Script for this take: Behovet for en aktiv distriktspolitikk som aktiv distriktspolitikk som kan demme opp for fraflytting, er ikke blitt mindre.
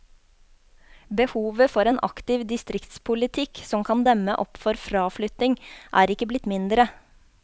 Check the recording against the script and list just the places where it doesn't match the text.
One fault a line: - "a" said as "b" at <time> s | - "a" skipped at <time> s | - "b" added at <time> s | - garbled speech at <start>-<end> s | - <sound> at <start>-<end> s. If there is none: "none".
- "aktiv distriktspolitikk som" skipped at 3.9 s